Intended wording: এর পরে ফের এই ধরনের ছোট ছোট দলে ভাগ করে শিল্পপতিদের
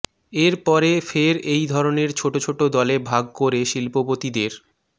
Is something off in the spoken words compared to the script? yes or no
no